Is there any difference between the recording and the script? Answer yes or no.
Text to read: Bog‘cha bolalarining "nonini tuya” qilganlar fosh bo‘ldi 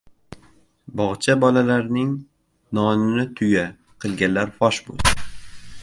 no